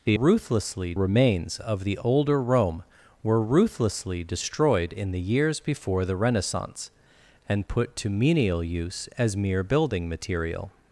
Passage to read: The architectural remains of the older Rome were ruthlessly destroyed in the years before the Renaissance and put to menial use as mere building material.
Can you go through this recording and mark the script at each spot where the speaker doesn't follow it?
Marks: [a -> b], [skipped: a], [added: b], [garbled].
The [architectural -> ruthlessly] remains of the older Rome were ruthlessly destroyed in the years before the Renaissance and put to menial use as mere building material.